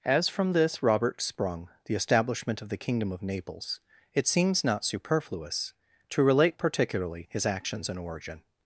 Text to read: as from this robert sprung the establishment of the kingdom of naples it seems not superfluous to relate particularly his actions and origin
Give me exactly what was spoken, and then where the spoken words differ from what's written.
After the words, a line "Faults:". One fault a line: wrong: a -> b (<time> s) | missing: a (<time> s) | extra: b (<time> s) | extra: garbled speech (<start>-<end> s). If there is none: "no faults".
as from this robert sprung the establishment of the kingdom of naples it seems not superfluous to relate particularly his actions and origin
Faults:
no faults